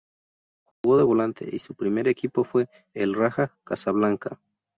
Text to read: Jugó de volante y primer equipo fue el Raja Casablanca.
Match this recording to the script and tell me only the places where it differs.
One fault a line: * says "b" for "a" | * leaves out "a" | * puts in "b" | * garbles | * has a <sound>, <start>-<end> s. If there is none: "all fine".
* has a dropout, 0.7-0.8 s
* puts in "su"